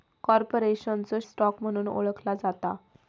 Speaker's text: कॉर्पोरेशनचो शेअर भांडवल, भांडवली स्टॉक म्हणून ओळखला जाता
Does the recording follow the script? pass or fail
fail